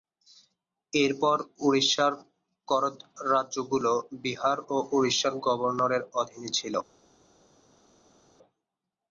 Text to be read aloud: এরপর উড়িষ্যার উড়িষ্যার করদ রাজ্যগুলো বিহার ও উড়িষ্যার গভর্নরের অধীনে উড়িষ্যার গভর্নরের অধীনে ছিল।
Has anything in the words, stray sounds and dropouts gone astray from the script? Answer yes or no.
yes